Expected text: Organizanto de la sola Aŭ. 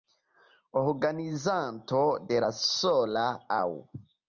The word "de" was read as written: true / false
true